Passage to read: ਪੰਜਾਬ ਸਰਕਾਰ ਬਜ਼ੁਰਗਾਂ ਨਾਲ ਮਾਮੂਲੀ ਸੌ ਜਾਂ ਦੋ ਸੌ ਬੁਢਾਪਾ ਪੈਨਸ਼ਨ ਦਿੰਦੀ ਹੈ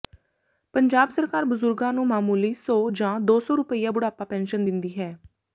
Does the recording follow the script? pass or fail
fail